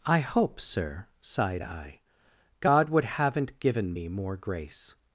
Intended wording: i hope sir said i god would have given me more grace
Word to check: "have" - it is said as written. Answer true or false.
false